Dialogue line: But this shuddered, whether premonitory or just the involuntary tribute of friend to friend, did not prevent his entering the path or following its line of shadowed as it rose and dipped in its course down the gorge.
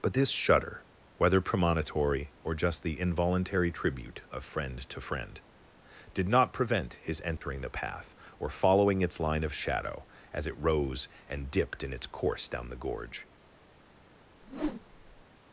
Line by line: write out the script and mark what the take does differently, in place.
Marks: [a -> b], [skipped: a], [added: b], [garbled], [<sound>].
But this [shuddered, -> shudder] whether premonitory or just the involuntary tribute of friend to friend, did not prevent his entering [dropout] the path or following its line of [shadowed -> shadow] as it rose and dipped in its course down the gorge. [whoosh]